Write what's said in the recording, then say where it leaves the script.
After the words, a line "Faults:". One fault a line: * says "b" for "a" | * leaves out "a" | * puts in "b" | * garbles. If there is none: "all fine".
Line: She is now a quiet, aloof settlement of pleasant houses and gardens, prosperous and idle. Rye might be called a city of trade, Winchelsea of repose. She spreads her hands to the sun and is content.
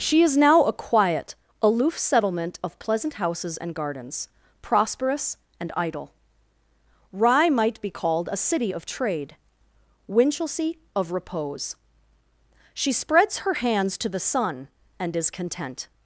She is now a quiet, aloof settlement of pleasant houses and gardens, prosperous and idle. Rye might be called a city of trade, Winchelsea of repose. She spreads her hands to the sun and is content.
Faults:
all fine